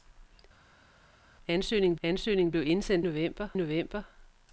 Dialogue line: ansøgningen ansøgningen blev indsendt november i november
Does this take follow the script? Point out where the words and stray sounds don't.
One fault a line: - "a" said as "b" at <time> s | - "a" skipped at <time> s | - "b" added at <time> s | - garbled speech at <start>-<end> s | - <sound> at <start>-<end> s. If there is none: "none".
none